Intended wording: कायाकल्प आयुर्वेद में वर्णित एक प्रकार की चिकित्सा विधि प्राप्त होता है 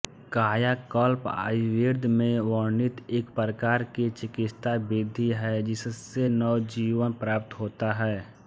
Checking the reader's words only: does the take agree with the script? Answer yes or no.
no